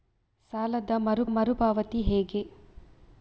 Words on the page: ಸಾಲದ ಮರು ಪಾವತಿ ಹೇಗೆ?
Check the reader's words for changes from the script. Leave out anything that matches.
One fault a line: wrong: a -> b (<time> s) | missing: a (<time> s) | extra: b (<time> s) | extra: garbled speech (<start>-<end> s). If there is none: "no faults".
extra: ಮರು (1.3 s)